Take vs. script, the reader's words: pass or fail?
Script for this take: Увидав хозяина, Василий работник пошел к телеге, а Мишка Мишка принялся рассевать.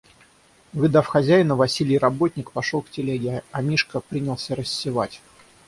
fail